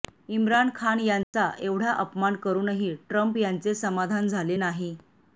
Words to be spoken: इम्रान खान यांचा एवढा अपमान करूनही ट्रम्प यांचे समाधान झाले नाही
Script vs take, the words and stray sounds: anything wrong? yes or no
yes